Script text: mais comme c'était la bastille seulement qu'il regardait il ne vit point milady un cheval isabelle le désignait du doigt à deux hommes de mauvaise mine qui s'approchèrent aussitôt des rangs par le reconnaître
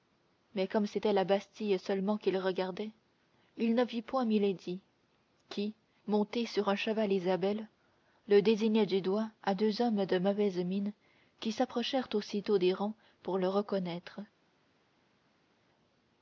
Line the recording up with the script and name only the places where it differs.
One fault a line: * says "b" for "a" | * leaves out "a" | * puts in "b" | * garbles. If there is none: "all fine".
* puts in "qui montée sur"
* says "pour" for "par"